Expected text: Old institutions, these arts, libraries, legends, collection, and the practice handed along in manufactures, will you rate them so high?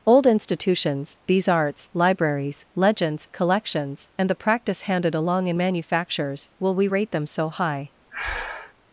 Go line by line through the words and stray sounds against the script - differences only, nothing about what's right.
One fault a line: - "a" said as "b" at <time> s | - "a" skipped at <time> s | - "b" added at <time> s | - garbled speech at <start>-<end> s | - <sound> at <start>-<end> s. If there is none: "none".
- "collection" said as "collections" at 3.3 s
- "you" said as "we" at 6.7 s
- breath at 8.1-8.7 s